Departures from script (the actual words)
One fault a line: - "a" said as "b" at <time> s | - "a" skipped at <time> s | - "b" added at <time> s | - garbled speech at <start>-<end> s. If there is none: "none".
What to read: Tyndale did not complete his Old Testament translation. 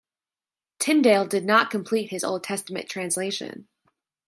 none